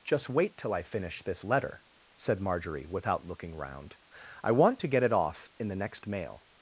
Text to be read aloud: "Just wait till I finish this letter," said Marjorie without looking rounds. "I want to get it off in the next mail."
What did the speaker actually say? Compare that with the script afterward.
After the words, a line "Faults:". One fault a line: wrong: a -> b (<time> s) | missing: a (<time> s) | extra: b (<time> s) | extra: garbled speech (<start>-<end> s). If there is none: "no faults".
"Just wait till I finish this letter," said Marjorie without looking round. "I want to get it off in the next mail."
Faults:
wrong: rounds -> round (3.5 s)